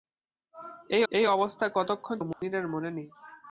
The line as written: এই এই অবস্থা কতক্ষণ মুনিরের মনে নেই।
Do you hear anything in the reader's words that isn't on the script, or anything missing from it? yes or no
no